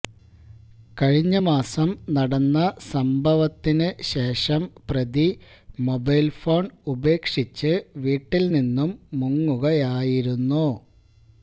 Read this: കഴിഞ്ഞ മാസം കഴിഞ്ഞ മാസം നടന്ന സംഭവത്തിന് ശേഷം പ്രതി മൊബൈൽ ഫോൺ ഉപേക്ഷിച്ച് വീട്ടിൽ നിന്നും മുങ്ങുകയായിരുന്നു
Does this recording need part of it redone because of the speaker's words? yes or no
yes